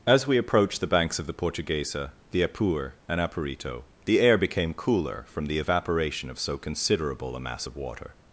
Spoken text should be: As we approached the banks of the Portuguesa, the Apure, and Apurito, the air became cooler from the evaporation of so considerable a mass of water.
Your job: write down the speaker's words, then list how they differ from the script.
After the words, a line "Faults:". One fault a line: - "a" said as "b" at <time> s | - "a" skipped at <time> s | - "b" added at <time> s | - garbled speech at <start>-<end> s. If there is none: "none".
As we approached the banks of the Portuguesa, the Apure, and Apurito, the air became cooler from the evaporation of so considerable a mass of water.
Faults:
none